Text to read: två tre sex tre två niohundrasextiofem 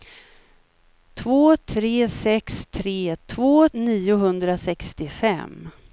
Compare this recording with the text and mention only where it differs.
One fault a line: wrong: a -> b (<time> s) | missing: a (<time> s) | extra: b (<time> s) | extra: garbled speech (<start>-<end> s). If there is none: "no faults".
no faults